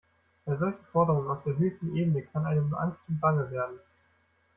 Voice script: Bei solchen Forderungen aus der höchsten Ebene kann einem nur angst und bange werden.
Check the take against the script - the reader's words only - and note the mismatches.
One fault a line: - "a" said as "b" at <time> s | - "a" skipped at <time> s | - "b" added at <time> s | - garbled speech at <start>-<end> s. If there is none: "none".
none